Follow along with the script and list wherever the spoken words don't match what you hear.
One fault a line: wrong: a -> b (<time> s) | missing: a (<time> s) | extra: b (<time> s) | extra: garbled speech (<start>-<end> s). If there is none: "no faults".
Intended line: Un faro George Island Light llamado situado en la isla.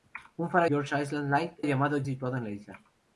no faults